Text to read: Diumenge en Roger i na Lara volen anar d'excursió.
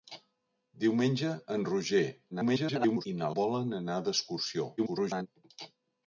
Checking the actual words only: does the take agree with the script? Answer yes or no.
no